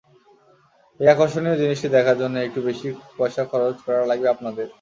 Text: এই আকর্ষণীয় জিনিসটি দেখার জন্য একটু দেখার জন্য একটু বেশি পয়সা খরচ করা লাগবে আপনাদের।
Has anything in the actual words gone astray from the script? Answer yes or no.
yes